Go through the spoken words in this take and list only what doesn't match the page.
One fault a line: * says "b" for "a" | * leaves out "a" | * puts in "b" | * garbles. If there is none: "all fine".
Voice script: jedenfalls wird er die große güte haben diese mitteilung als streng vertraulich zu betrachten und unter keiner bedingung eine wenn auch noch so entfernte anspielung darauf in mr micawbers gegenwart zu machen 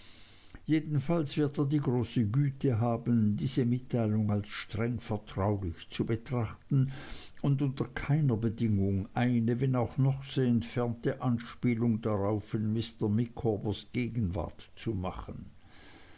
all fine